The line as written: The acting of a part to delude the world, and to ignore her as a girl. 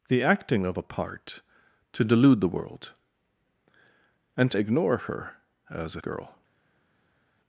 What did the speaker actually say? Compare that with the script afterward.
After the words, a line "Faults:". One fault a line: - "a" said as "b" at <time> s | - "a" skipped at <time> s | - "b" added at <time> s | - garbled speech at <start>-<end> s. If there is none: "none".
The acting of a part to delude the world, and to ignore her as a girl.
Faults:
none